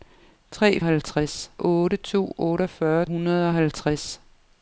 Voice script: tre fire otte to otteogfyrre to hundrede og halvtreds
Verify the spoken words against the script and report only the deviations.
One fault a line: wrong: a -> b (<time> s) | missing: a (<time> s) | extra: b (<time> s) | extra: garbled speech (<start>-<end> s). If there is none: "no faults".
wrong: fire -> halvtreds (0.8 s)
missing: to (3.1 s)